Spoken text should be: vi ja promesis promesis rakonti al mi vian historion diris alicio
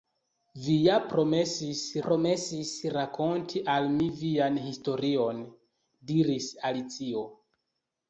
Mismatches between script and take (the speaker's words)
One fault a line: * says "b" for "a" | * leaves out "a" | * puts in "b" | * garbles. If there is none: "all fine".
all fine